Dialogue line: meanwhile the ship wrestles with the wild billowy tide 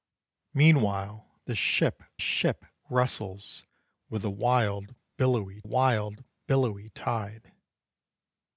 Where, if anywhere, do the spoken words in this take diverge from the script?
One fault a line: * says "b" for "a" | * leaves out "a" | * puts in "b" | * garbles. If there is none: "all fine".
* puts in "ship"
* puts in "wild billowy"